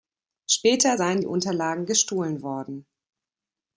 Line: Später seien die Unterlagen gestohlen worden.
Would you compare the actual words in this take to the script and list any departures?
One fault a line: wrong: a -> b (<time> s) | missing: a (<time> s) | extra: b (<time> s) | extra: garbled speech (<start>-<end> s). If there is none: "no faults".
no faults